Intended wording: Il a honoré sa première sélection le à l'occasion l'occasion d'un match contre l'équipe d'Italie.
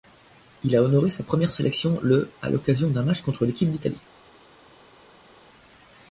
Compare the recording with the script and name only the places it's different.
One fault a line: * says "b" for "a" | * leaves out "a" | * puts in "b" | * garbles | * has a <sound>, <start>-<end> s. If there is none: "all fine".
* leaves out "l'occasion"